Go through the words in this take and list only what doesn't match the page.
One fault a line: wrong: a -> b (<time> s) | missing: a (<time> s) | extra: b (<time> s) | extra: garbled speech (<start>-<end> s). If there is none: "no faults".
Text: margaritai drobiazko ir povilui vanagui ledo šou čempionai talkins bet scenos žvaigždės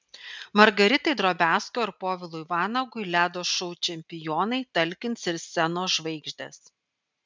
wrong: bet -> ir (5.3 s)